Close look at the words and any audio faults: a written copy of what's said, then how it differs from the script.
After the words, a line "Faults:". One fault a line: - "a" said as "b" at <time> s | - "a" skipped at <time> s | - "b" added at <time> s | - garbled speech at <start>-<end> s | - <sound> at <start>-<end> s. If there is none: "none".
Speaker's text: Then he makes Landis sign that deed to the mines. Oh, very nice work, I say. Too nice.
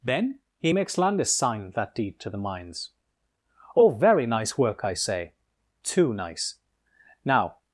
Then he makes Landis sign that deed to the mines. Oh, very nice work, I say. Too nice. "'Now
Faults:
- "Now" added at 7.3 s